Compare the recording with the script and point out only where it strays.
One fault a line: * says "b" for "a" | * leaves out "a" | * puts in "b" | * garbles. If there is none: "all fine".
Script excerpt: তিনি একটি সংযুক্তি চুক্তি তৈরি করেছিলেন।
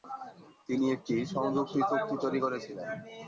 all fine